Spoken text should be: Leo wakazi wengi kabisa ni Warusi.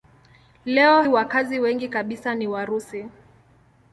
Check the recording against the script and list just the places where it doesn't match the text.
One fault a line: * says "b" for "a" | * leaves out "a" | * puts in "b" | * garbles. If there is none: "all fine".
all fine